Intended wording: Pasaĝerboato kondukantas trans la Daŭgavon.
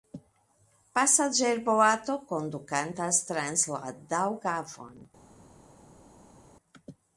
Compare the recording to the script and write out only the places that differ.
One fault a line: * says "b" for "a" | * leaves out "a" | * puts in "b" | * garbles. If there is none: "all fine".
all fine